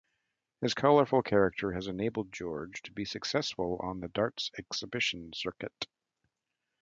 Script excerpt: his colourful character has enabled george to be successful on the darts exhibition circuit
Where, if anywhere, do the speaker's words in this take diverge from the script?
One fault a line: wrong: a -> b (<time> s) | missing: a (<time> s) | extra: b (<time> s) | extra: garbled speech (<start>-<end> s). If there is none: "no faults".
no faults